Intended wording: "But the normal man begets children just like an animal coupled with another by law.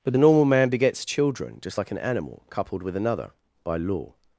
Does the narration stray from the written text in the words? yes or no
no